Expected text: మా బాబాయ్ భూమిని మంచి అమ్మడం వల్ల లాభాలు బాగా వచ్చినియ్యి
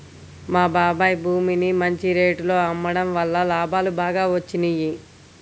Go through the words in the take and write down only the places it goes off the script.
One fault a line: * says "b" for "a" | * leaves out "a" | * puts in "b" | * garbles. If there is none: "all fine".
* puts in "రేటులో"